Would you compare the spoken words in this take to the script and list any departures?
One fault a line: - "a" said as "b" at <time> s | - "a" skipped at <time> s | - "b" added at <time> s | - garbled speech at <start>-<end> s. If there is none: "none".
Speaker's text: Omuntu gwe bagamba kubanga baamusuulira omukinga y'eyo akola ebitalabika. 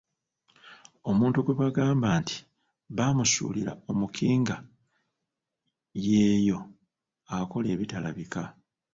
- "kubanga" said as "nti" at 2.2 s